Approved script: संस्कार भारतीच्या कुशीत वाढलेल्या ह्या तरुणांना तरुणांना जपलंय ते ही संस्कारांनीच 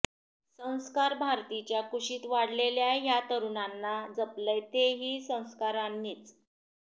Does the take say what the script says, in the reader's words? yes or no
no